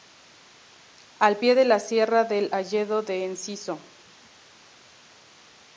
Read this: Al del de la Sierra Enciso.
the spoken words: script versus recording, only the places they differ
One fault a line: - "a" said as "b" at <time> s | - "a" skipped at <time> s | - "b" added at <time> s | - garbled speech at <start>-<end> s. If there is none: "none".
- "del" said as "pie" at 1.4 s
- "del Hayedo de" added at 2.2 s